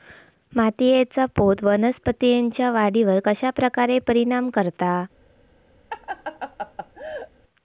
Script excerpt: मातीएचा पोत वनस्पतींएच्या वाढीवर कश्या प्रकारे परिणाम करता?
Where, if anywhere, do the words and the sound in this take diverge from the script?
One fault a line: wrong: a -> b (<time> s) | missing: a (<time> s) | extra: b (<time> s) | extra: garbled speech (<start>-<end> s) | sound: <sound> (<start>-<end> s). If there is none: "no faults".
sound: laugh (5.9-7.3 s)